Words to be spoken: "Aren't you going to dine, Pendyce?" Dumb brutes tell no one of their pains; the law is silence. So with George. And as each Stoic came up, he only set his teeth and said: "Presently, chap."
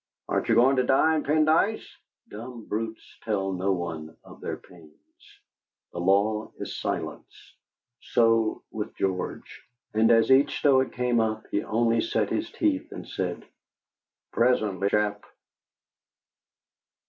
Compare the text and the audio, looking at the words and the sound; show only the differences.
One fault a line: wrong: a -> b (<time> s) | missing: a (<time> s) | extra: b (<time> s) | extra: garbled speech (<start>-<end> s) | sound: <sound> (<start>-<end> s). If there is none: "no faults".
no faults